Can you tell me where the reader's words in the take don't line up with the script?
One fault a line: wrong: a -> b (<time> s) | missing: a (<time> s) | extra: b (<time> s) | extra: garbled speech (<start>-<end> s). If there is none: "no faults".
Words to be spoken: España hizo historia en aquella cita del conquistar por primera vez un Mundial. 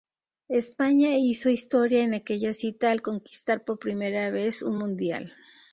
wrong: del -> al (2.9 s)